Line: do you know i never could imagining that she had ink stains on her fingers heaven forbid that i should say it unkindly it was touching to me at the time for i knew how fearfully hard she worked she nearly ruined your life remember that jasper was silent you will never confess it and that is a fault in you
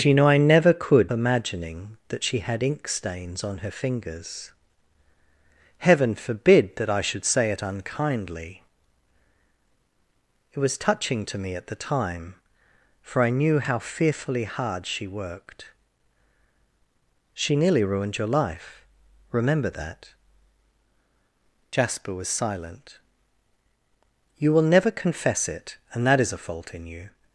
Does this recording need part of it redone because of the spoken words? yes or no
no